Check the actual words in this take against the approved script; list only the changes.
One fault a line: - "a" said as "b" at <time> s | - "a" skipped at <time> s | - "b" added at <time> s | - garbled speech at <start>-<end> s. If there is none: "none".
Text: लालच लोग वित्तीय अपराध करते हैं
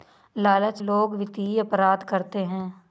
none